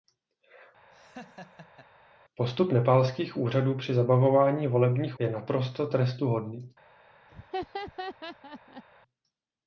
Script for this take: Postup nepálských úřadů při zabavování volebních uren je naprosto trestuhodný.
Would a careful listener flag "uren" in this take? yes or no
yes